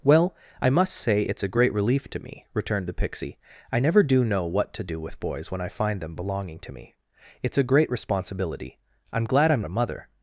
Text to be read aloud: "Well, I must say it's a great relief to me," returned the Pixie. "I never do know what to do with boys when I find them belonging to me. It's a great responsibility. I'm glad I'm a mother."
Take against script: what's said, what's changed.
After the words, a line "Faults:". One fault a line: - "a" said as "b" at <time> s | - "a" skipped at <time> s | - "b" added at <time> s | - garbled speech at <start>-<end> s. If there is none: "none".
"Well, I must say it's a great relief to me," returned the Pixie. "I never do know what to do with boys when I find them belonging to me. It's a great responsibility. I'm glad I'm a mother."
Faults:
none